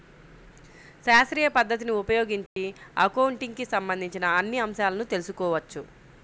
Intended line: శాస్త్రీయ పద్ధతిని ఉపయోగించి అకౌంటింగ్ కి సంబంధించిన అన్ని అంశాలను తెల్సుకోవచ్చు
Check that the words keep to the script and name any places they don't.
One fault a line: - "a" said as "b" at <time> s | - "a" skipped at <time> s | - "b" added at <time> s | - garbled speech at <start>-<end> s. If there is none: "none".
none